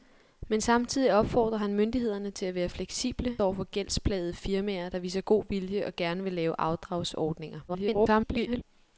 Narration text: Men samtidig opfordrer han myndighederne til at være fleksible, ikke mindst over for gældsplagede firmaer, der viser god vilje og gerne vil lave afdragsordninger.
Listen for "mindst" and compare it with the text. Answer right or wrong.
wrong